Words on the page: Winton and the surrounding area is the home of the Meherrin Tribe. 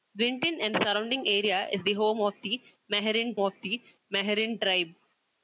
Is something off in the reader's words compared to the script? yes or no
yes